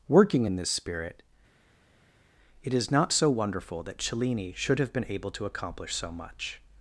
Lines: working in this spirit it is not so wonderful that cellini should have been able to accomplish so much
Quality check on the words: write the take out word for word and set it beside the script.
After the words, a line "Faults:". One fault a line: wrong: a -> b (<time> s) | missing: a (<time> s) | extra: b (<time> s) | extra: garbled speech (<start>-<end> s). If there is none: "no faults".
working in this spirit it is not so wonderful that cellini should have been able to accomplish so much
Faults:
no faults